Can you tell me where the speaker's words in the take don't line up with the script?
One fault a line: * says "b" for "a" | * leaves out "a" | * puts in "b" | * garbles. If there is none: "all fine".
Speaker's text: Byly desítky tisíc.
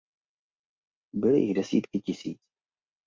* puts in "jich"